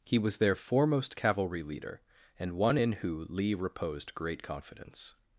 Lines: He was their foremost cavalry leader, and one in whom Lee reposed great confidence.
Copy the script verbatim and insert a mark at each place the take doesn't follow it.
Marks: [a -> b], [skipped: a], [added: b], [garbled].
He was their foremost cavalry leader, and one in [whom -> who] Lee reposed great confidence.